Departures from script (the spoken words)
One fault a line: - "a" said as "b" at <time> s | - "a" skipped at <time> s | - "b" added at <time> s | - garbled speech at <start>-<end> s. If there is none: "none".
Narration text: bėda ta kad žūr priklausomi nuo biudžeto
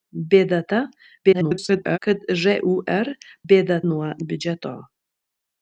- garbled speech at 1.2-2.0 s
- "priklausomi" said as "bėda" at 3.5 s